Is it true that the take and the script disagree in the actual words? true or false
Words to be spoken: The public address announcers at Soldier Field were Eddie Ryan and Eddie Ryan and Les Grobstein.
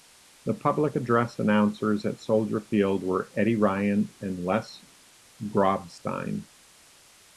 true